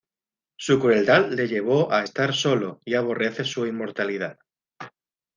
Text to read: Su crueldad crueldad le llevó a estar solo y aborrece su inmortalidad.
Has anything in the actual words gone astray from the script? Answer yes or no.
yes